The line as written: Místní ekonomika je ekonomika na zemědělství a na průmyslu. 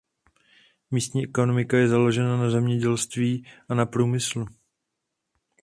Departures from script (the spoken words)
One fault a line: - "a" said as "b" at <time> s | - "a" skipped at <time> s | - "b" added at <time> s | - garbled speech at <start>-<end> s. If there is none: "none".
- "ekonomika" said as "založena" at 1.9 s